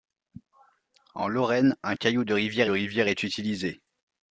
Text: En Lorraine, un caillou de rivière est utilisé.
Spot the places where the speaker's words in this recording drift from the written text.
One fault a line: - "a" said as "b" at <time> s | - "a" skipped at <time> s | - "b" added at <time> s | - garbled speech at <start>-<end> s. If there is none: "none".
- "rivière" added at 2.7 s